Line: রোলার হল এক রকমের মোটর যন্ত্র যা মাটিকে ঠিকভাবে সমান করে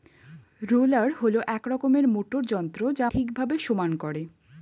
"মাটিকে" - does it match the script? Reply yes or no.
no